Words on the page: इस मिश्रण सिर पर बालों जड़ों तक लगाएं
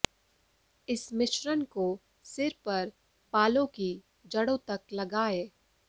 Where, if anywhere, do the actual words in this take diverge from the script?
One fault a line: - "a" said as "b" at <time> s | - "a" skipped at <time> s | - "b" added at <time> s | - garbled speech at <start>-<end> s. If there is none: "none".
- "को" added at 1.7 s
- "की" added at 3.7 s